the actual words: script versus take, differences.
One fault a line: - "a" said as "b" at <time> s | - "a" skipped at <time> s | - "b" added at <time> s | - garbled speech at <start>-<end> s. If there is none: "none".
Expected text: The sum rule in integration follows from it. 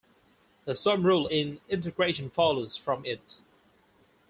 none